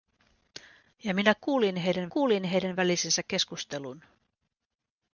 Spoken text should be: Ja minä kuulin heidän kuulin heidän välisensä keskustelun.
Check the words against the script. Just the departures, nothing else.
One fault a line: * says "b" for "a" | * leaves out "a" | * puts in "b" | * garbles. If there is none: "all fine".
all fine